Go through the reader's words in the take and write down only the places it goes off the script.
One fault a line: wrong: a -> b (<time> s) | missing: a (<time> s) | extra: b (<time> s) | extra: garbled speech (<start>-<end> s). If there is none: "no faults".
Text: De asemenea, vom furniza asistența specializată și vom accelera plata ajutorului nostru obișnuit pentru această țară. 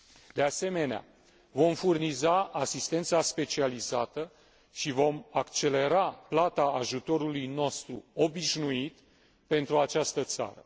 no faults